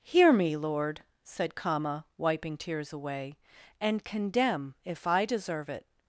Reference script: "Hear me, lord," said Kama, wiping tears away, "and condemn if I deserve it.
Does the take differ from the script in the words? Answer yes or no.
no